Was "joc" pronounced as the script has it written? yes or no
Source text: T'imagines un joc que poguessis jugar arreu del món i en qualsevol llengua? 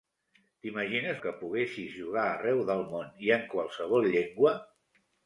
no